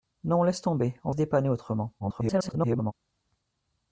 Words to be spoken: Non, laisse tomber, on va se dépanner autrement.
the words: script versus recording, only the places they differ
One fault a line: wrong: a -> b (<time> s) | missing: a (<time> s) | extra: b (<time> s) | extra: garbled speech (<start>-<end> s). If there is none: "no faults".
missing: va (1.1 s)
extra: garbled speech (2.0-2.9 s)